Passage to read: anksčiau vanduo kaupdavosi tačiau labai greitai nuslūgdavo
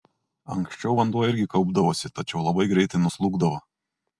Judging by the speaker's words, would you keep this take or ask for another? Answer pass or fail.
fail